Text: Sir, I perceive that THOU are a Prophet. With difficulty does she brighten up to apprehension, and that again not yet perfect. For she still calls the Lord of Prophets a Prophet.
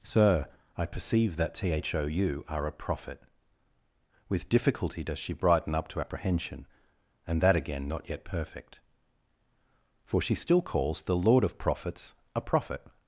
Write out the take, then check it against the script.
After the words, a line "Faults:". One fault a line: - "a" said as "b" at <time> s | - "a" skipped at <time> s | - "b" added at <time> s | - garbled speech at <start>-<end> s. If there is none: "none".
Sir, I perceive that THOU are a Prophet. With difficulty does she brighten up to apprehension, and that again not yet perfect. For she still calls the Lord of Prophets a Prophet.
Faults:
none